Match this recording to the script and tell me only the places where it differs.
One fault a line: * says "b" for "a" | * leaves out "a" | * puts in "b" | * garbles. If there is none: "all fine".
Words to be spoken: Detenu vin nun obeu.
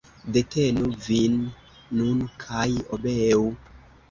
* puts in "kaj"